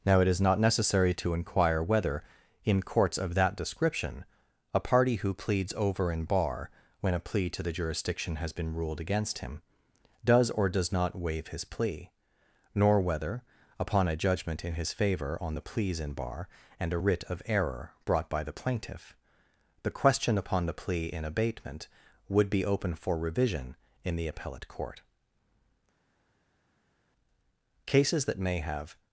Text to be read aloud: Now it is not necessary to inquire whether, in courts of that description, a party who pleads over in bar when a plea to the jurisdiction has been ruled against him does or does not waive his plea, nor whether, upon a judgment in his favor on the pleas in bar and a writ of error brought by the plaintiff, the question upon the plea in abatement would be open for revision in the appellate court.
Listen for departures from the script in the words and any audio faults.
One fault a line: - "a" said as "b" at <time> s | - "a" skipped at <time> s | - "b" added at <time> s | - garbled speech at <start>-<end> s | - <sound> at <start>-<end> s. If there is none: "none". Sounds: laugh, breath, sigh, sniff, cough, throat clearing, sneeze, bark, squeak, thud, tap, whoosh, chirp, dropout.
- "Cases that may have" added at 28.0 s